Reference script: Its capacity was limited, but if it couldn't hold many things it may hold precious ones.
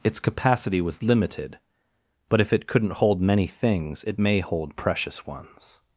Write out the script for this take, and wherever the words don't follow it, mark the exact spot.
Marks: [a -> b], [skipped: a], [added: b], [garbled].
Its capacity was limited, but if it couldn't hold many things it may hold precious ones.